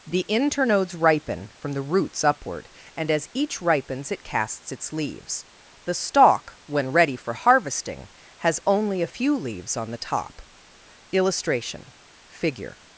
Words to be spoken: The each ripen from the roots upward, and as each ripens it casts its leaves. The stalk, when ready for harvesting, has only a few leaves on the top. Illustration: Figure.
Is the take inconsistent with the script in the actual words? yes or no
yes